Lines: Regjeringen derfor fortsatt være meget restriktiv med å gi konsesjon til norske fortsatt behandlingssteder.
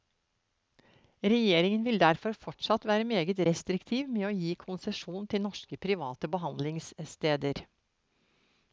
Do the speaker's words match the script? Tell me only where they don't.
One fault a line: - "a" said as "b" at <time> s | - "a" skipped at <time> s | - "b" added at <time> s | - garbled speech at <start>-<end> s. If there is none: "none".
- "vil" added at 1.9 s
- "fortsatt" said as "private" at 5.9 s